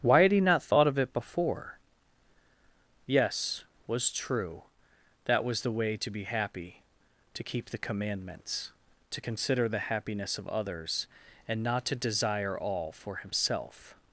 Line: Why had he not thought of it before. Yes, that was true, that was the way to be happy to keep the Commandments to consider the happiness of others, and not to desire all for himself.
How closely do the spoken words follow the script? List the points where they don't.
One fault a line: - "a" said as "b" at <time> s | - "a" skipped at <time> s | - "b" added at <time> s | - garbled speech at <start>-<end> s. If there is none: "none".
- "that" skipped at 3.6 s